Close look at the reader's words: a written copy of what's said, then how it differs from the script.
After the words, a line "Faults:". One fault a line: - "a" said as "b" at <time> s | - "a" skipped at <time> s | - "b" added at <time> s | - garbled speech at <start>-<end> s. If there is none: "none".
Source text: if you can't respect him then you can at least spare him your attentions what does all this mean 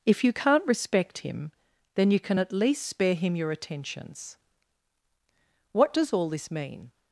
if you can't respect him then you can at least spare him your attentions what does all this mean
Faults:
none